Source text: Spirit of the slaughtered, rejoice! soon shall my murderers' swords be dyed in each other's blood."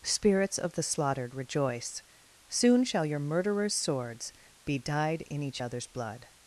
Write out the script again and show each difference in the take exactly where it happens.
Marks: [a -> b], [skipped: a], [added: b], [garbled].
[Spirit -> Spirits] of the slaughtered, rejoice! soon shall [my -> your] murderers' swords be dyed in each other's blood."